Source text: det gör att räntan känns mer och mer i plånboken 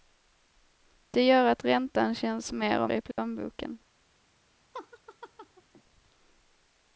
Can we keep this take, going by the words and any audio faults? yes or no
no